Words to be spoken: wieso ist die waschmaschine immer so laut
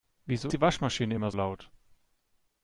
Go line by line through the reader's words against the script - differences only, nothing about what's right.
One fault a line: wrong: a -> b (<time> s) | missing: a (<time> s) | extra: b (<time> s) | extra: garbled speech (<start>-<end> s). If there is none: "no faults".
missing: ist (0.5 s)
missing: so (1.3 s)